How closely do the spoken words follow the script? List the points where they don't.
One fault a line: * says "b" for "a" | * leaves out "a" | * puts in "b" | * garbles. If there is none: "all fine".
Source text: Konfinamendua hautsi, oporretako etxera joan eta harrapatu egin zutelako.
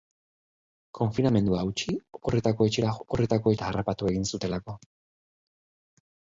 * says "oporretako" for "joan"